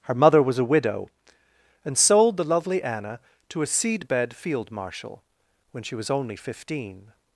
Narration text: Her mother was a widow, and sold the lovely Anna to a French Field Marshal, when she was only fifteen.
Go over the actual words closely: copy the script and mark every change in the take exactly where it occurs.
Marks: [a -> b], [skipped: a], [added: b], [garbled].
Her mother was a widow, and sold the lovely Anna to a [French -> Seedbed] Field Marshal, when she was only fifteen.